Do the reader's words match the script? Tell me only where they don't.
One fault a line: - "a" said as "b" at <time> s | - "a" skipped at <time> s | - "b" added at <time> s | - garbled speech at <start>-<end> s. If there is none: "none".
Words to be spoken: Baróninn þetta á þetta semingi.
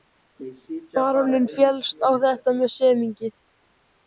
- "þetta" said as "féllst" at 1.6 s
- "með" added at 2.6 s